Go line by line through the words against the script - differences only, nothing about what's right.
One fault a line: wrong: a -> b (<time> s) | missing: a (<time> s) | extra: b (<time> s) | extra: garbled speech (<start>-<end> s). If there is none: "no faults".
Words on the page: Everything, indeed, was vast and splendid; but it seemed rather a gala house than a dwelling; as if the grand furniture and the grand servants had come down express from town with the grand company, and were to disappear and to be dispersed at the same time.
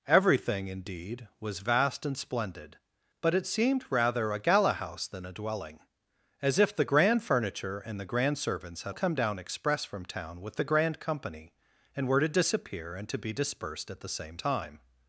no faults